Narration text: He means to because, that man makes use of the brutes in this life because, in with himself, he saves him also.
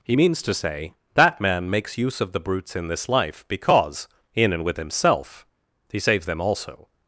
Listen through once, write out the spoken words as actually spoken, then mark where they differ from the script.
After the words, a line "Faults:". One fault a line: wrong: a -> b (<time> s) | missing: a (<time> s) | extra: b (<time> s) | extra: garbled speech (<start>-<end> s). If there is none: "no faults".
He means to say, that man makes use of the brutes in this life because, in and with himself, he saves them also.
Faults:
wrong: because -> say (0.5 s)
extra: and (4.5 s)
wrong: him -> them (6.2 s)